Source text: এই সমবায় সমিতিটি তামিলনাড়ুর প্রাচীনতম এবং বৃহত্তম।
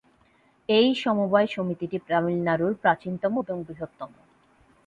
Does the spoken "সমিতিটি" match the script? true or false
true